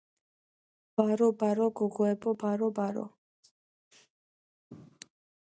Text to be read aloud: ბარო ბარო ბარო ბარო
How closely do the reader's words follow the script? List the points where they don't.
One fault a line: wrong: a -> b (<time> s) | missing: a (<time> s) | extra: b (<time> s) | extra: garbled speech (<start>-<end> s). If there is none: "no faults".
extra: გოგოებო (1.8 s)